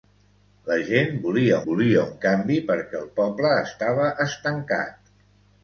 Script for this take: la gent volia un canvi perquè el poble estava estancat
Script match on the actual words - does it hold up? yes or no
no